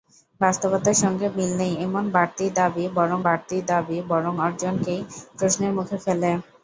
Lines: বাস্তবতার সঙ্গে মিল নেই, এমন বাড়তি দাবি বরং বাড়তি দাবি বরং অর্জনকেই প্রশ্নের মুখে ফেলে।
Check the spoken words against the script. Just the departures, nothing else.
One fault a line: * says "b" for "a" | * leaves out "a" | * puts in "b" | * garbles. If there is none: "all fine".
all fine